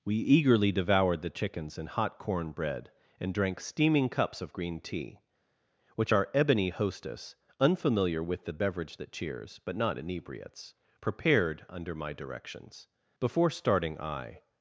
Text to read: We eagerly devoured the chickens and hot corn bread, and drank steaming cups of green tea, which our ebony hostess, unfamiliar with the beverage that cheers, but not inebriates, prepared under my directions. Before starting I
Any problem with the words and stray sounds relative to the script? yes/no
no